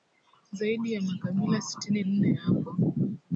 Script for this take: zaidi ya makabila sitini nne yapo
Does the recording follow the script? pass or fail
pass